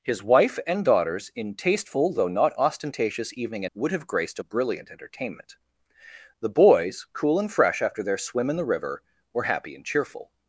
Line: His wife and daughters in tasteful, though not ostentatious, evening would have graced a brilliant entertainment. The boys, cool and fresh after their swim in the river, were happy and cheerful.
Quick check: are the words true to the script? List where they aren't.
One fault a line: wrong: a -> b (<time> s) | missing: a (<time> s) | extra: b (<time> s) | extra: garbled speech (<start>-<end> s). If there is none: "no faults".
no faults